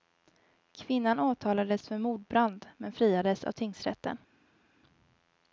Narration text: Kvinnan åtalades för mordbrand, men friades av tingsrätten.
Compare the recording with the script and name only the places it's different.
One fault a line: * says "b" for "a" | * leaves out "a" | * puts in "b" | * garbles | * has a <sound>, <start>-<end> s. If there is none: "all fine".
all fine